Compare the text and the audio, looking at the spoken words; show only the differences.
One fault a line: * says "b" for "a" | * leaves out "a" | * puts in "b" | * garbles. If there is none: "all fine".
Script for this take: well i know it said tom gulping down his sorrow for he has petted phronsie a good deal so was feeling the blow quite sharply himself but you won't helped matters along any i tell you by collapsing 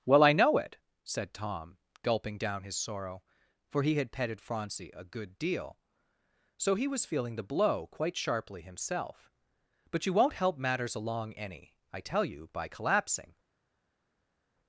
* says "had" for "has"
* puts in "he"
* says "help" for "helped"